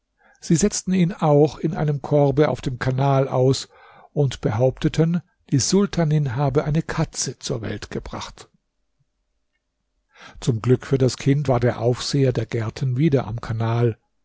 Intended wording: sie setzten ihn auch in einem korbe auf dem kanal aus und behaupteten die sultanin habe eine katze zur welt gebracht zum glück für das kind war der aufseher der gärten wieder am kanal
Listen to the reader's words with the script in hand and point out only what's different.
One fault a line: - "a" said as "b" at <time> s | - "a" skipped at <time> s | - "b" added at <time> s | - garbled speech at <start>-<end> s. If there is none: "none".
none